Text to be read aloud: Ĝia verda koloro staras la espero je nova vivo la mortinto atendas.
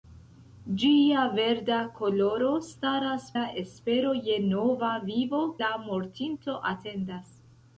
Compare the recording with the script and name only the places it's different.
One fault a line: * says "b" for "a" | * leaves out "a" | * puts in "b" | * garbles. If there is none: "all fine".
all fine